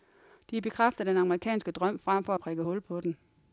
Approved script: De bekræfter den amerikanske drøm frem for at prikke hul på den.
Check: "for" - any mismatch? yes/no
no